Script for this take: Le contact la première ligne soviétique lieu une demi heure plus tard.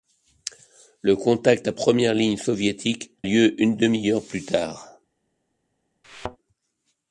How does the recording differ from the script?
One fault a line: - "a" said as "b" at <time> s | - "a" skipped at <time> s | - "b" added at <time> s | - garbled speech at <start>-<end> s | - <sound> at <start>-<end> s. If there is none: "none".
- thud at 6.0-6.4 s